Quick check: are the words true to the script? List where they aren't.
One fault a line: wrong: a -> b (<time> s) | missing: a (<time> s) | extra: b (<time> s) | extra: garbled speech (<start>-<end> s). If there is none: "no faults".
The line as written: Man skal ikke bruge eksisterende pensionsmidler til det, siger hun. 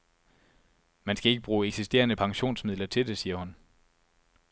no faults